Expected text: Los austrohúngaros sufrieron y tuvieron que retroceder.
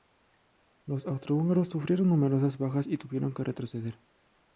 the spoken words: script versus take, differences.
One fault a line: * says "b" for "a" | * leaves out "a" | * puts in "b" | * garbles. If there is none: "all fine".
* puts in "numerosas bajas"